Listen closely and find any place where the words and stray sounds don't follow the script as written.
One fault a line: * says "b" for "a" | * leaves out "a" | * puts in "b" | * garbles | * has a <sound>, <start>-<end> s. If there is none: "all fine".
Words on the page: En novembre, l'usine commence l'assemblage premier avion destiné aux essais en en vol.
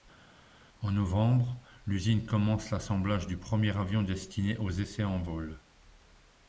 * puts in "du"
* leaves out "en"